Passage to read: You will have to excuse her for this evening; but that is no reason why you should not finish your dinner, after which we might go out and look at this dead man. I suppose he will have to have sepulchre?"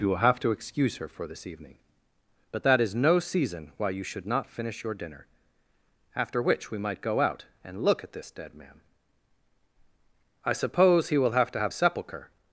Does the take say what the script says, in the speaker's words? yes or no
no